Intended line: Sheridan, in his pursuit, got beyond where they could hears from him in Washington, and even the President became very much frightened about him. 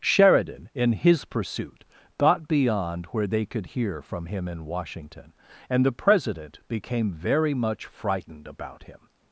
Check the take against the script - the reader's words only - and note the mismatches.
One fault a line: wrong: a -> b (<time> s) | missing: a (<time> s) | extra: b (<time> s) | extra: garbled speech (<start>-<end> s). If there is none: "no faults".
wrong: hears -> hear (3.6 s)
missing: even (5.8 s)